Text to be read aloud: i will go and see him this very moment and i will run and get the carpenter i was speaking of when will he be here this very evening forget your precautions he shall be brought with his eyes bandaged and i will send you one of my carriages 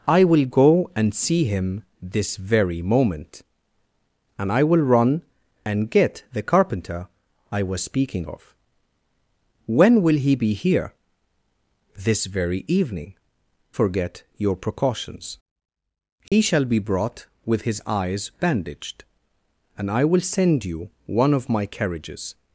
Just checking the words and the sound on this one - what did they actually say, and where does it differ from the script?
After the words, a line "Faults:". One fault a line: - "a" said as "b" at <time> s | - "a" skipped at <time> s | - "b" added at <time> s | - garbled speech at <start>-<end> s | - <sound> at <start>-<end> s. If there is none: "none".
i will go and see him this very moment and i will run and get the carpenter i was speaking of when will he be here this very evening forget your precautions he shall be brought with his eyes bandaged and i will send you one of my carriages
Faults:
- dropout at 16.3-16.3 s